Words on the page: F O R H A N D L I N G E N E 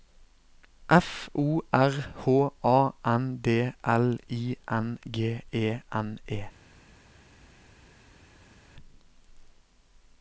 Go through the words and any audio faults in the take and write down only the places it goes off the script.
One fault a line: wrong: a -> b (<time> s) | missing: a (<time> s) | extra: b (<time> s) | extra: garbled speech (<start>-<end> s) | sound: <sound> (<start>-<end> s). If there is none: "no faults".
no faults